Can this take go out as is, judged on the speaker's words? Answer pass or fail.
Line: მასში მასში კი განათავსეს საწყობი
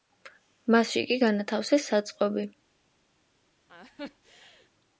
fail